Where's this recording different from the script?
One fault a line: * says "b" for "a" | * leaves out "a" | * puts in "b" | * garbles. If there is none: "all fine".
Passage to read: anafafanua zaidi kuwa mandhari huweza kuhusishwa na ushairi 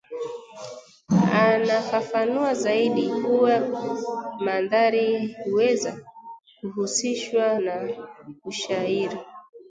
all fine